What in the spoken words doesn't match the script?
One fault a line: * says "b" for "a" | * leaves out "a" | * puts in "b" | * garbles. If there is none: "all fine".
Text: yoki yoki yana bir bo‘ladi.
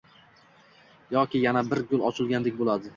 * leaves out "yoki"
* puts in "gul ochilgandek"